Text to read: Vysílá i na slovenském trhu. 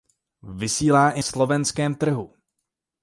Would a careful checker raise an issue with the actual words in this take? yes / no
yes